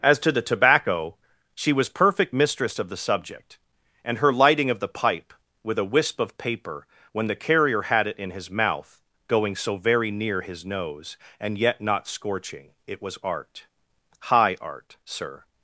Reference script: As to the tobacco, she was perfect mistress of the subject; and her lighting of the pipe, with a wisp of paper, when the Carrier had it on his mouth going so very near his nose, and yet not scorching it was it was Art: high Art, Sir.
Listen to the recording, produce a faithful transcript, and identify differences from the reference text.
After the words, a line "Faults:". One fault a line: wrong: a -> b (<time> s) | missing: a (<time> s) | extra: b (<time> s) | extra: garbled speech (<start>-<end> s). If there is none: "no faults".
As to the tobacco, she was perfect mistress of the subject; and her lighting of the pipe, with a wisp of paper, when the Carrier had it in his mouth going so very near his nose, and yet not scorching it was Art: high Art, Sir.
Faults:
wrong: on -> in (8.2 s)
missing: it was (13.2 s)